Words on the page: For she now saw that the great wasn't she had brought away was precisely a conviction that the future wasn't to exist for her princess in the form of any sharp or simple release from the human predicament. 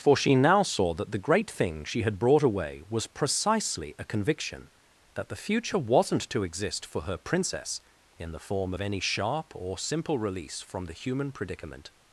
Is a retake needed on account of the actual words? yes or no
yes